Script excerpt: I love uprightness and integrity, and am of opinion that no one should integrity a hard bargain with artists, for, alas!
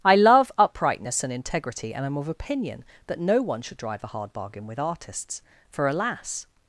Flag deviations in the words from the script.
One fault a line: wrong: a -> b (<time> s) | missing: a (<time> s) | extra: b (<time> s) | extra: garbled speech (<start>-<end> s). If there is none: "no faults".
wrong: integrity -> drive (3.8 s)